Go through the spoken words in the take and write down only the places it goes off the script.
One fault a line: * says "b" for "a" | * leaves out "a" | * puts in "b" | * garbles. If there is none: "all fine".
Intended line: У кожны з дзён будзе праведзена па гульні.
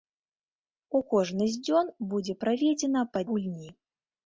all fine